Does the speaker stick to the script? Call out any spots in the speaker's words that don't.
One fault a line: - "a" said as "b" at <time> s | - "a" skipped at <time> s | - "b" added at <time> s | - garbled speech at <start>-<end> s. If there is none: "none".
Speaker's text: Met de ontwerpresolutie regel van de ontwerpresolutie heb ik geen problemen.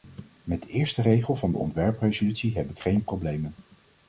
- "ontwerpresolutie" said as "eerste" at 0.7 s